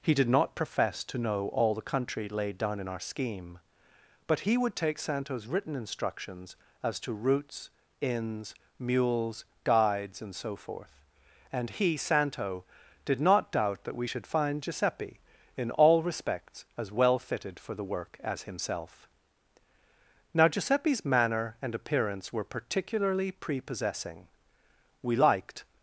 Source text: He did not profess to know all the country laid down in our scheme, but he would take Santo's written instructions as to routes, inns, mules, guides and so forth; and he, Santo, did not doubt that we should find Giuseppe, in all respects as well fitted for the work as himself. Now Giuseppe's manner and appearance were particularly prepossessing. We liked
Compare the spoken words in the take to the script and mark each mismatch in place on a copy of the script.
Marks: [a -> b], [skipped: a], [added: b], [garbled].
He did not profess to know all the country laid down in our scheme, but he would take Santo's written instructions as to routes, inns, mules, guides and so forth; and he, Santo, did not doubt that we should find Giuseppe, in all respects as well fitted for the work as himself. Now Giuseppe's manner and appearance were particularly prepossessing. We liked